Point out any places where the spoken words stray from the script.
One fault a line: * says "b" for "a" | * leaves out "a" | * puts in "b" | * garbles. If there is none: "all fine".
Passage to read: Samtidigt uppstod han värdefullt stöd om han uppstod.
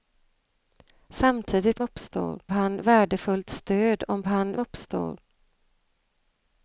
all fine